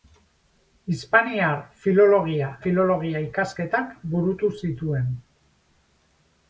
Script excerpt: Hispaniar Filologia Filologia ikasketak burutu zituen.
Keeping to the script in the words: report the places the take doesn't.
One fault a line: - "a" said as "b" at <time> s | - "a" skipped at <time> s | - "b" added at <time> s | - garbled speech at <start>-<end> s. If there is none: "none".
none